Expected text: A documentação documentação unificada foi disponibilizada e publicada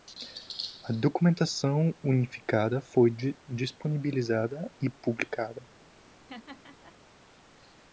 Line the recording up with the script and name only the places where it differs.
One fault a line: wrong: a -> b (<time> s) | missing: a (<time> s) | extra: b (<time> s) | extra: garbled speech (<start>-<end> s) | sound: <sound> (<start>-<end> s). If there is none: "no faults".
missing: documentação (1.9 s)
sound: laugh (6.0-7.0 s)